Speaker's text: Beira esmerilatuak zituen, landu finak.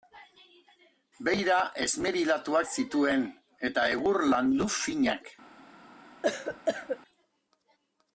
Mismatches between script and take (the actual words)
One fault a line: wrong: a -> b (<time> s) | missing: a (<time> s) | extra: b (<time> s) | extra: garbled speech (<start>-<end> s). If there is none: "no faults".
extra: eta egur (3.7 s)